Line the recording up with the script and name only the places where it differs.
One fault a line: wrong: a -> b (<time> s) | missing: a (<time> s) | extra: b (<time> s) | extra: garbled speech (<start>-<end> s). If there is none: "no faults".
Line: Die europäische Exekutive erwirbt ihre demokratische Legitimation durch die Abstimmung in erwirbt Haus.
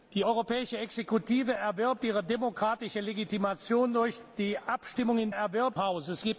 no faults